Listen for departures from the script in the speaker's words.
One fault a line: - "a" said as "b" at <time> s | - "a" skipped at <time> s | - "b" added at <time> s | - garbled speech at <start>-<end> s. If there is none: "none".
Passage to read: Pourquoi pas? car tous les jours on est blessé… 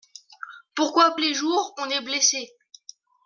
- "pas car tous" skipped at 1.1 s